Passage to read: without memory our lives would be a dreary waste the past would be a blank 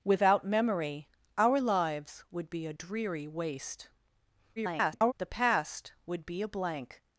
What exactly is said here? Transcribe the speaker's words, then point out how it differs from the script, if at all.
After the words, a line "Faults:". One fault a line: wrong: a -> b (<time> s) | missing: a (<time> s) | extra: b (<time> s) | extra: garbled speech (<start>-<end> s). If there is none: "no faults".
without memory our lives would be a dreary waste [garbled] the past would be a blank
Faults:
extra: garbled speech (4.6-5.1 s)